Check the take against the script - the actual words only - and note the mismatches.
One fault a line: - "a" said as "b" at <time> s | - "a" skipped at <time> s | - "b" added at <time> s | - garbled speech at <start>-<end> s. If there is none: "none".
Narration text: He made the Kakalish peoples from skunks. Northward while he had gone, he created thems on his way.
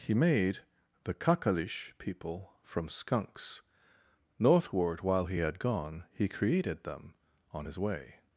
- "peoples" said as "people" at 2.0 s
- "thems" said as "them" at 6.8 s